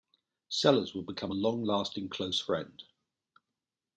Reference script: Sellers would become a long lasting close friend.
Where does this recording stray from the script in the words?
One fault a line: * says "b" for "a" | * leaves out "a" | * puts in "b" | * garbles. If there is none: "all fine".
all fine